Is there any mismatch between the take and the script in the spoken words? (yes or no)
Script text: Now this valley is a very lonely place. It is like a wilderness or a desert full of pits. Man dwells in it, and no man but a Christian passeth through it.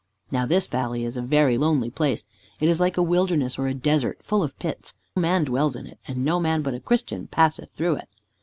no